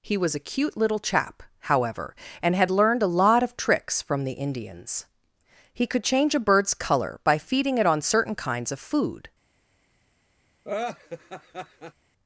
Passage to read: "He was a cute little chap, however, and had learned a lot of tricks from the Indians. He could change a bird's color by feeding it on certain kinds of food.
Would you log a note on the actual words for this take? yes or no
no